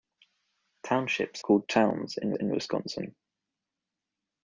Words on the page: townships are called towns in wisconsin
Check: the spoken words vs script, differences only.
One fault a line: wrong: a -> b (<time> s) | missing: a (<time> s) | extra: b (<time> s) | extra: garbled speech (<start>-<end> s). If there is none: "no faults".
missing: are (1.4 s)
extra: in (2.4 s)